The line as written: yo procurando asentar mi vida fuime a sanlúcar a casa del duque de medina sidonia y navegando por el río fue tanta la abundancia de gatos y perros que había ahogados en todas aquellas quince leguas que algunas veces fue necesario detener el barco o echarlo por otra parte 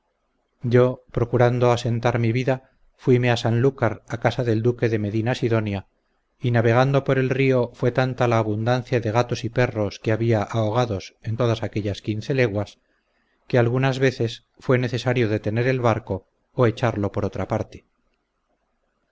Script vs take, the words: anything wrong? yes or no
no